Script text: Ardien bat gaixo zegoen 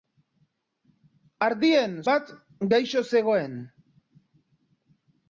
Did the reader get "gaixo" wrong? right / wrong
right